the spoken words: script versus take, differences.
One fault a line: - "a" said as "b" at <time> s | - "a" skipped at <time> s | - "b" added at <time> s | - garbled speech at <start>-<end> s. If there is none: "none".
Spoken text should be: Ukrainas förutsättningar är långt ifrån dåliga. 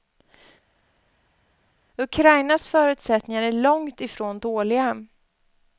none